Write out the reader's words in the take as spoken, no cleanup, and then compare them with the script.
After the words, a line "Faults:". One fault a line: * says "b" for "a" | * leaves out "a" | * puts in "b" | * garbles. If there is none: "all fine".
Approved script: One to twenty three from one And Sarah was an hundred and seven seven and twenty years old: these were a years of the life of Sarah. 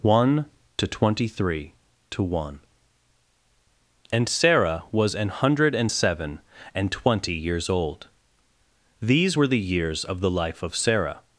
One to twenty three to one And Sarah was an hundred and seven and twenty years old: these were the years of the life of Sarah.
Faults:
* says "to" for "from"
* leaves out "seven"
* says "the" for "a"